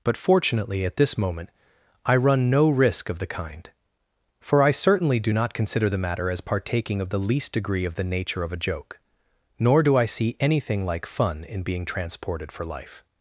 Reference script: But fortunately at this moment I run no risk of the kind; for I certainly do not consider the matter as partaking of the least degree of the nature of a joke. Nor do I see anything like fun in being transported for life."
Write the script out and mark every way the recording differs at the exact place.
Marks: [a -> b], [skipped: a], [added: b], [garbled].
But fortunately at this moment I run no risk of the kind; for I certainly do not consider the matter as partaking of the least degree of the nature of a joke. Nor do I see anything like fun in being transported for life."